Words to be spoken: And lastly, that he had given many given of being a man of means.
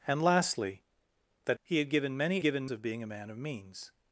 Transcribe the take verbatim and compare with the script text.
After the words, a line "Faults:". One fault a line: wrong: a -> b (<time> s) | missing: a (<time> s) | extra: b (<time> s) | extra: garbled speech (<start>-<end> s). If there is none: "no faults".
And lastly, that he had given many given of being a man of means.
Faults:
no faults